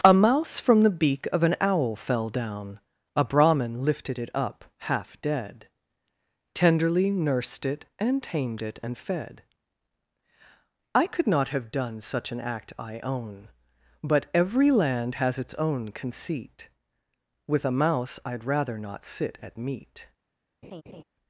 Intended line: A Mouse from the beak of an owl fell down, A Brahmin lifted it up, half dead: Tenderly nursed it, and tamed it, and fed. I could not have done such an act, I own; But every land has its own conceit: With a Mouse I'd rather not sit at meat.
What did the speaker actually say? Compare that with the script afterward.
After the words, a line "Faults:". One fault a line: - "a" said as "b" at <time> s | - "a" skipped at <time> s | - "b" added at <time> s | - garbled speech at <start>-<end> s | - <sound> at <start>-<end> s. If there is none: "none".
A Mouse from the beak of an owl fell down, A Brahmin lifted it up, half dead: Tenderly nursed it, and tamed it, and fed. I could not have done such an act, I own; But every land has its own conceit: With a Mouse I'd rather not sit at meat.
Faults:
- laugh at 20.6-21.0 s